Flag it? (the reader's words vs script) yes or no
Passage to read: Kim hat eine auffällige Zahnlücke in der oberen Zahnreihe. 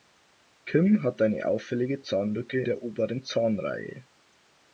yes